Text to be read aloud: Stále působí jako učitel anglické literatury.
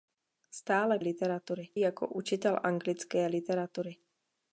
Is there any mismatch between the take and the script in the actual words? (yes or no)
yes